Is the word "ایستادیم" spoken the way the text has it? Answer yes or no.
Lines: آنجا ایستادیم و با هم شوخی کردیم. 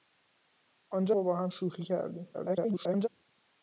no